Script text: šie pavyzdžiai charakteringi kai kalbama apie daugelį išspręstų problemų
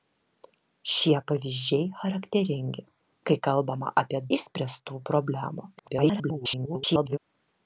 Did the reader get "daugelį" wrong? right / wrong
wrong